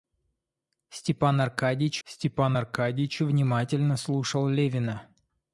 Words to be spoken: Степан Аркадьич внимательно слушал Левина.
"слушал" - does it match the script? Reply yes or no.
yes